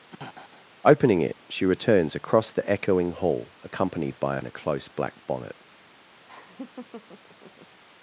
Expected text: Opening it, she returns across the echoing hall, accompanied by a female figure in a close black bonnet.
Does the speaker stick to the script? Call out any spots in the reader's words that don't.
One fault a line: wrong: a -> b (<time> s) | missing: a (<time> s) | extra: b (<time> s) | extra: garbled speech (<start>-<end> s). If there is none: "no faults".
missing: female figure (4.4 s)